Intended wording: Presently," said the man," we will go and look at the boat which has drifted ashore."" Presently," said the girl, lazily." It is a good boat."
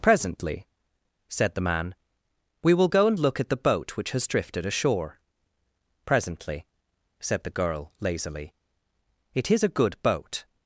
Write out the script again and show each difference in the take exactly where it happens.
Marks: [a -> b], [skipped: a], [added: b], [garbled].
Presently," said the man," we will go and look at the boat which has drifted ashore."" Presently," said the girl, lazily." It is a good boat."